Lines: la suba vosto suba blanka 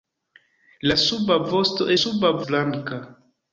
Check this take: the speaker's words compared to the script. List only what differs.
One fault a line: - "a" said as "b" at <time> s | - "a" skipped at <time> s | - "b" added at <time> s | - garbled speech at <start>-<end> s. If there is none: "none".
none